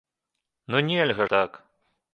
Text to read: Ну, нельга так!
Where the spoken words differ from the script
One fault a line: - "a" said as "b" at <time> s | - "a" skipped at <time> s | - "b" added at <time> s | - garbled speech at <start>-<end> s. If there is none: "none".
none